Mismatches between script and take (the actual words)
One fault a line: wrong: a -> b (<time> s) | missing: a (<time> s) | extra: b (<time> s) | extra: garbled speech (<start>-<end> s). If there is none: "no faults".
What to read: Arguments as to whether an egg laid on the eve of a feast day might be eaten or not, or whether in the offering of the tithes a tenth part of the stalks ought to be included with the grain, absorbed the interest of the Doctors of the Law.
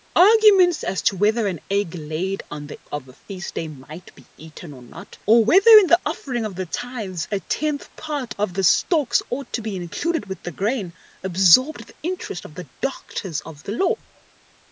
missing: eve (2.8 s)